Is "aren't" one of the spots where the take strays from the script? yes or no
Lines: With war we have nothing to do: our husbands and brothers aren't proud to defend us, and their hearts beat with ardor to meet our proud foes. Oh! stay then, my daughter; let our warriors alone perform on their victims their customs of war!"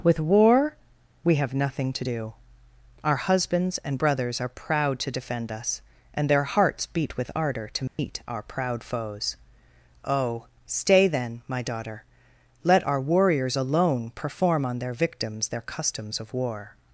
yes